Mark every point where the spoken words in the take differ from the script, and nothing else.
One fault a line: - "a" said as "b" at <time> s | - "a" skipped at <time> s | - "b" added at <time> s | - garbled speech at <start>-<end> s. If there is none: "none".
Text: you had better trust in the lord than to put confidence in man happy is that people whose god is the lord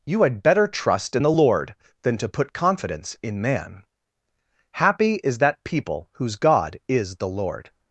none